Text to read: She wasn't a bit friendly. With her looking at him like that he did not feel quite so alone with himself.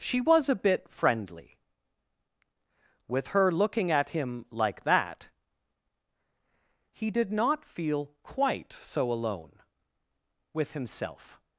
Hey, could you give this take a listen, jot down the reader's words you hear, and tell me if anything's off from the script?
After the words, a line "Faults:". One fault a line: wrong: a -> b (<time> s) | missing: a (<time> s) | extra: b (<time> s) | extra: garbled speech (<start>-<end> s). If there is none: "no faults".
She was a bit friendly. With her looking at him like that he did not feel quite so alone with himself.
Faults:
wrong: wasn't -> was (0.2 s)